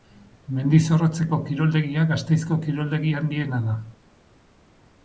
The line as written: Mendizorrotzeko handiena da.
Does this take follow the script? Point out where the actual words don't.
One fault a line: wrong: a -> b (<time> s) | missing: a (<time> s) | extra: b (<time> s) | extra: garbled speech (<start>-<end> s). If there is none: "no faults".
extra: kiroldegia Gasteizko kiroldegi (1.5 s)